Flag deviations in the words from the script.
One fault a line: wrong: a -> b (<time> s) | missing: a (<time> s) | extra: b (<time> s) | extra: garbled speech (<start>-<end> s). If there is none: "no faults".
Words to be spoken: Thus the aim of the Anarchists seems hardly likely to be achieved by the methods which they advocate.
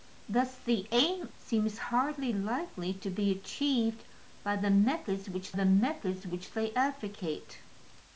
missing: of the Anarchists (1.3 s)
extra: the methods which (5.5 s)